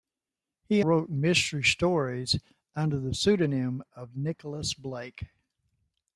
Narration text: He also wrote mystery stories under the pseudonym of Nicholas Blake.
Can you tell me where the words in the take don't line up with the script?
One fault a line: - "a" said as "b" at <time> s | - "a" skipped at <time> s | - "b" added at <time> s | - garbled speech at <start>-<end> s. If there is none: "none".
- "also" skipped at 0.8 s